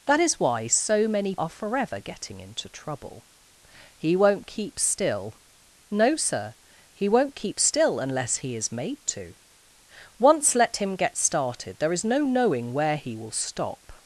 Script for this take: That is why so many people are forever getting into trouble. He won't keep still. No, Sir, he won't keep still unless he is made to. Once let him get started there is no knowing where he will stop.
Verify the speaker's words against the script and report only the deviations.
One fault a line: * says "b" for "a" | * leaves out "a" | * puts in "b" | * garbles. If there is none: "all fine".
* leaves out "people"